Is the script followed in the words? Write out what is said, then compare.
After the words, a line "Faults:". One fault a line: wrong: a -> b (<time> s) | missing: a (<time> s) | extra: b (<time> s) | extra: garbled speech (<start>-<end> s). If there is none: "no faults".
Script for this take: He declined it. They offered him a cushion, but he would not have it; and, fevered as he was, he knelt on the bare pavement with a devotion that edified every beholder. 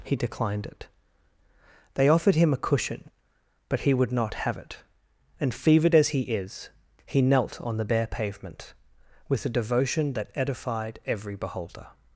He declined it. They offered him a cushion, but he would not have it; and, fevered as he is, he knelt on the bare pavement with a devotion that edified every beholder.
Faults:
wrong: was -> is (6.2 s)